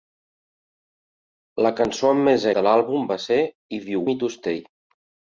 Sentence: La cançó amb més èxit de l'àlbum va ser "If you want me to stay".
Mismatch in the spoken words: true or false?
true